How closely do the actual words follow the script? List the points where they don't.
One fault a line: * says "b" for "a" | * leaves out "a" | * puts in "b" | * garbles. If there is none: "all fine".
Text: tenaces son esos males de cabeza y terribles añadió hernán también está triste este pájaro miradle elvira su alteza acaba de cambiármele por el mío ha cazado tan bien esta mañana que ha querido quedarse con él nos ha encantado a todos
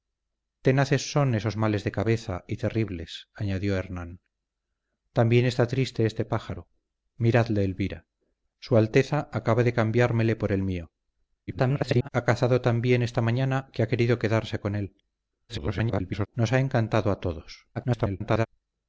* garbles
* garbles
* garbles